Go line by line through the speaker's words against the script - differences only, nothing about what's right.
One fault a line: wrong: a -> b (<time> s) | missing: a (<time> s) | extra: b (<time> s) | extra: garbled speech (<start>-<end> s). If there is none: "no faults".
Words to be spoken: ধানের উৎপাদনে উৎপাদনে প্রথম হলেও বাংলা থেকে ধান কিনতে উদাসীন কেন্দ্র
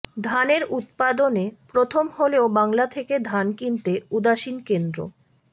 missing: উৎপাদনে (1.4 s)